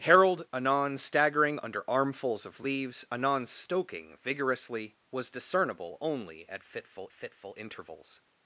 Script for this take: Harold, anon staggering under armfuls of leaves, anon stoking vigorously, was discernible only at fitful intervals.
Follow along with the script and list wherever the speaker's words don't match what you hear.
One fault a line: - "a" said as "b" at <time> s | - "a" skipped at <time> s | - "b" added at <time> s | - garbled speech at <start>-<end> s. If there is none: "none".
- "fitful" added at 7.1 s